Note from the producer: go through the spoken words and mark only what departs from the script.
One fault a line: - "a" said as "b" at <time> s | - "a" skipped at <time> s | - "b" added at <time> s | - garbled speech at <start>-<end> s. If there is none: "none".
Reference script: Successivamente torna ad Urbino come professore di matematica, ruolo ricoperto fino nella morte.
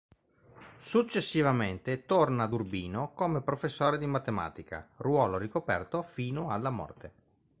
- "nella" said as "alla" at 6.5 s